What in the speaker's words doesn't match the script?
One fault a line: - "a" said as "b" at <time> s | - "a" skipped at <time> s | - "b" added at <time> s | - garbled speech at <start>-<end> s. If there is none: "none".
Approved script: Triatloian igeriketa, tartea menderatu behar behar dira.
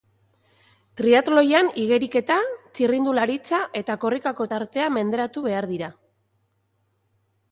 - "txirrindularitza eta korrikako" added at 2.8 s
- "behar" skipped at 5.7 s